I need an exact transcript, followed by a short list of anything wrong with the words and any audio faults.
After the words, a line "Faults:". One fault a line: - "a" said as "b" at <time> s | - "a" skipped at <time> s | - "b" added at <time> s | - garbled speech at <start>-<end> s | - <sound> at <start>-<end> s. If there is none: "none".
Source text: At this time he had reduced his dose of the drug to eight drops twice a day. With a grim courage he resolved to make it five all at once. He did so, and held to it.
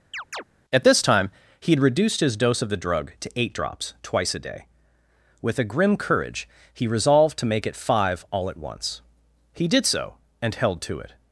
At this time he had reduced his dose of the drug to eight drops twice a day. With a grim courage he resolved to make it five all at once. He did so, and held to it.
Faults:
- chirp at 0.1-0.4 s